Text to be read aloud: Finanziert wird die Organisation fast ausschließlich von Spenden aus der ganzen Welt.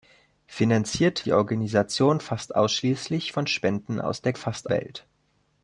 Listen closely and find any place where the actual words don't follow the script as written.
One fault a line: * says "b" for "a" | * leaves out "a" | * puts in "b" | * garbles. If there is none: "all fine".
* leaves out "wird"
* says "fast" for "ganzen"